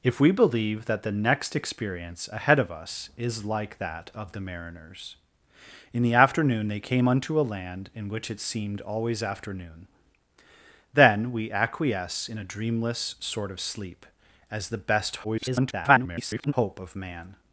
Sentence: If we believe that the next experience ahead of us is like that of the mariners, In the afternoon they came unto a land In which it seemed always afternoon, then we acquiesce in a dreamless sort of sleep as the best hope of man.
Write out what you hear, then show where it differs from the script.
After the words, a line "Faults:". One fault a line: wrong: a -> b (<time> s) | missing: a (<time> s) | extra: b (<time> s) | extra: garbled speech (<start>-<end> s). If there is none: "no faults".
If we believe that the next experience ahead of us is like that of the mariners, In the afternoon they came unto a land In which it seemed always afternoon, then we acquiesce in a dreamless sort of sleep as the best [garbled] hope of man.
Faults:
extra: garbled speech (15.2-16.5 s)